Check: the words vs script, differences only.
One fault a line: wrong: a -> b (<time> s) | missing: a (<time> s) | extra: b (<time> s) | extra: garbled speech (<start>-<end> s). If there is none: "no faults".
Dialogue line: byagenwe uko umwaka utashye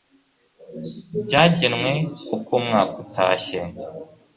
no faults